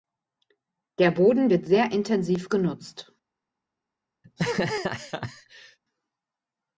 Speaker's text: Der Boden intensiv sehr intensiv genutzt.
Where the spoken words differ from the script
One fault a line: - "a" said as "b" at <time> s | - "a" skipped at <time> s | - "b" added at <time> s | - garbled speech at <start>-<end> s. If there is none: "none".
- "intensiv" said as "wird" at 1.5 s